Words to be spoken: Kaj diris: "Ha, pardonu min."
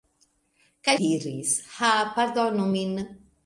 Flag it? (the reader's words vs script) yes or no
no